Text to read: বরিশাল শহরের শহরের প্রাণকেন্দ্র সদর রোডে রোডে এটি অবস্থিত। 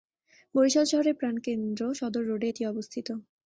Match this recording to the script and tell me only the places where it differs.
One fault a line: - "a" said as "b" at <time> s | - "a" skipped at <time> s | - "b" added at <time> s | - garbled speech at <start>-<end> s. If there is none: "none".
- "শহরের" skipped at 1.1 s
- "রোডে" skipped at 2.5 s